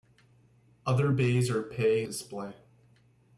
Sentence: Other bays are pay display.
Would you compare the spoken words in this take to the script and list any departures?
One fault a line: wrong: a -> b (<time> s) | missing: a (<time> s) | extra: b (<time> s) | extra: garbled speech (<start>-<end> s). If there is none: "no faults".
no faults